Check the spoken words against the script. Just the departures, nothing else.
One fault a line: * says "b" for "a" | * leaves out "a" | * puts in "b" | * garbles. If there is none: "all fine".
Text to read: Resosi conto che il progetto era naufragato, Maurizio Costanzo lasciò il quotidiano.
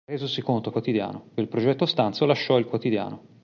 * says "quotidiano" for "che"
* leaves out "era naufragato Maurizio"